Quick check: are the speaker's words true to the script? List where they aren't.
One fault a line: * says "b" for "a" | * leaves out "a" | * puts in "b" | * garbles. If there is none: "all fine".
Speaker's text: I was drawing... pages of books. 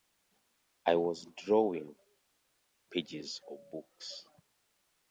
all fine